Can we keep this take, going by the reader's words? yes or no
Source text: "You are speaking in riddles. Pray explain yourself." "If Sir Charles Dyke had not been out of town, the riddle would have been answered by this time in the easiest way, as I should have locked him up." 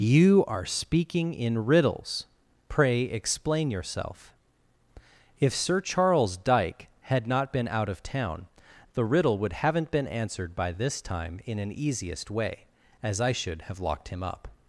no